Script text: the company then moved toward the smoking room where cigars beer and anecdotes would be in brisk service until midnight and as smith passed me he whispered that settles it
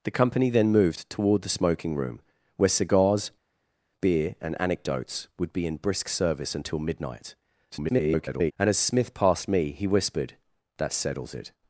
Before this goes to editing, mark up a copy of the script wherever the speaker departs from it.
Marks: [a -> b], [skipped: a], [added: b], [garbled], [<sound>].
the company then moved toward the smoking room where cigars beer and anecdotes would be in brisk service until midnight [garbled] and as smith passed me he whispered that settles it